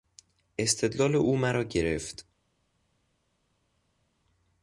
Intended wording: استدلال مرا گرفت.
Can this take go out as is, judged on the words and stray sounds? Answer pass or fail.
fail